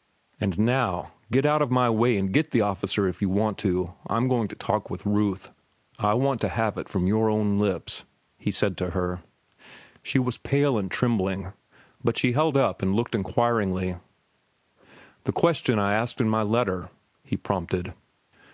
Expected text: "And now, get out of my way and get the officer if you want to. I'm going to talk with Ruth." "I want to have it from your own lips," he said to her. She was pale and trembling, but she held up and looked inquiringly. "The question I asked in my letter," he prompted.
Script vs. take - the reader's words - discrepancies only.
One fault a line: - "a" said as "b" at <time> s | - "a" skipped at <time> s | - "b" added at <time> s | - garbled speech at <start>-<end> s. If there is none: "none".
none